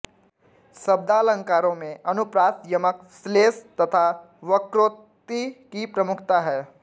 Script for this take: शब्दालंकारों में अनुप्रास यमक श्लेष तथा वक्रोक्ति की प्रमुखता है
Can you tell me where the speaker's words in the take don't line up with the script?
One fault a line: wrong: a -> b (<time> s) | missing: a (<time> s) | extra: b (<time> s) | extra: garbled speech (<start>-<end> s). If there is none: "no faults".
no faults